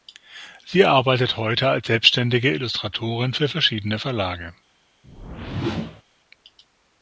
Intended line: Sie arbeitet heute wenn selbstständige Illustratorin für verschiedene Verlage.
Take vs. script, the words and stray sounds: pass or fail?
fail